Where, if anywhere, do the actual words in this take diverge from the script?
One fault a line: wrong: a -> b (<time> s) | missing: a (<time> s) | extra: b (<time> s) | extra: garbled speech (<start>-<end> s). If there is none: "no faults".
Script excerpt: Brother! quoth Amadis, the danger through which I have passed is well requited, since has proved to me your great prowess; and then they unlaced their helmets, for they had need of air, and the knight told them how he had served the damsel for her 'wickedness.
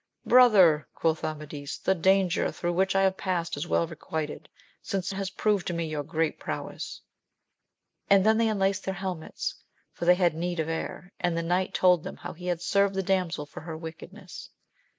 no faults